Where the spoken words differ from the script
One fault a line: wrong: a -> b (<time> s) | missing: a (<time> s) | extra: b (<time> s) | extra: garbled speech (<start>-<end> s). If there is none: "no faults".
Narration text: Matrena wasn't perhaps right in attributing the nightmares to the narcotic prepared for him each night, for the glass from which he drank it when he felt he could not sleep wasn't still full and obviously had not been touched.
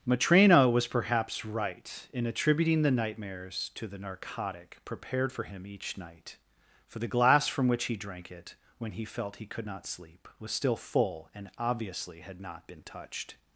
wrong: wasn't -> was (0.7 s)
wrong: wasn't -> was (10.4 s)